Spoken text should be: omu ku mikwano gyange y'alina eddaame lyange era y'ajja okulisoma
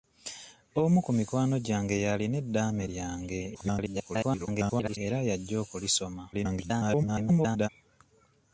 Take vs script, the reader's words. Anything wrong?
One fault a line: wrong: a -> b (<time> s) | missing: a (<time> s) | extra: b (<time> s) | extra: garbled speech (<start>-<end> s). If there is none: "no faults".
extra: garbled speech (3.5-5.0 s)
extra: garbled speech (6.3-7.7 s)